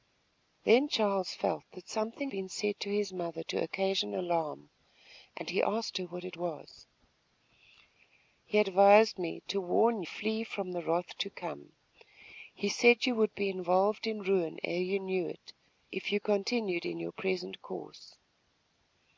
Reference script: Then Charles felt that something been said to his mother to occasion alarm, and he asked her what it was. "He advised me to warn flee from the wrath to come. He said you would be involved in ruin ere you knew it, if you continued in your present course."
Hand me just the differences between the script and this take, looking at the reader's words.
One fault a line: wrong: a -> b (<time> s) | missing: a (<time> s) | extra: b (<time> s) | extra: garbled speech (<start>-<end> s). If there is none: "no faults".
no faults